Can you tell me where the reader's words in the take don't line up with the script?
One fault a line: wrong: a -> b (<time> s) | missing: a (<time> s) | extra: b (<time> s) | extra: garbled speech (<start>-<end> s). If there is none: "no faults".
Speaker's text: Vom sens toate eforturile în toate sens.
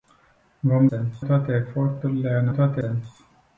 no faults